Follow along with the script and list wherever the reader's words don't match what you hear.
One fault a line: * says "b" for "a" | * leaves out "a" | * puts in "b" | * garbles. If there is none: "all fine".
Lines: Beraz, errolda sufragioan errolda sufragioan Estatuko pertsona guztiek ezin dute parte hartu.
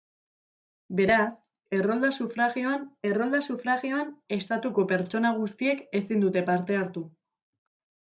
all fine